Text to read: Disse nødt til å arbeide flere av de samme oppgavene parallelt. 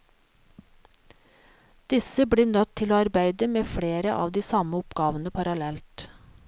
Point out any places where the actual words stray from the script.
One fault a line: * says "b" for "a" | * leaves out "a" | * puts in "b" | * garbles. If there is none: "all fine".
* puts in "blir"
* puts in "med"